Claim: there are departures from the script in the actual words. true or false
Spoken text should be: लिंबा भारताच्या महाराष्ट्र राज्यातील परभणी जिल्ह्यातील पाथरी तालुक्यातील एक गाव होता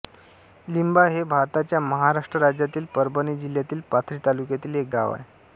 true